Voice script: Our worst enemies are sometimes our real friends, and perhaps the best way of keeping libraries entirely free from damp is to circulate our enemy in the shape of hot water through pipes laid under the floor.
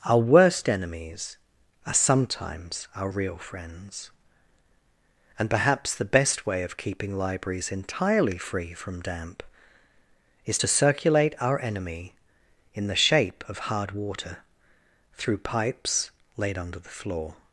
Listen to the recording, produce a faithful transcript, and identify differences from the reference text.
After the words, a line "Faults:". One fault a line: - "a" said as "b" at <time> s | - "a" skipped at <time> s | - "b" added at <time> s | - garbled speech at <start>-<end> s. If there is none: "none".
Our worst enemies are sometimes our real friends, and perhaps the best way of keeping libraries entirely free from damp is to circulate our enemy in the shape of hard water through pipes laid under the floor.
Faults:
- "hot" said as "hard" at 13.7 s